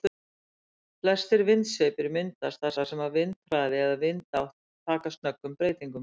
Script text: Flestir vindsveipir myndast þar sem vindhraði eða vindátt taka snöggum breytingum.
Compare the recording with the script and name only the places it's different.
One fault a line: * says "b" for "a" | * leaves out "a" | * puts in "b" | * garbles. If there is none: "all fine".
* puts in "þar"